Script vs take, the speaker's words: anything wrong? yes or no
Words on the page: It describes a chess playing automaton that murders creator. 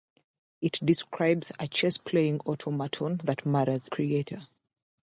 no